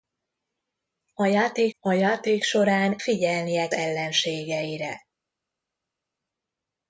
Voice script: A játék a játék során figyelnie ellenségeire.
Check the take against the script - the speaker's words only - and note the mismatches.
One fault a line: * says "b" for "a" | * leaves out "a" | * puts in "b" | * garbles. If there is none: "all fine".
all fine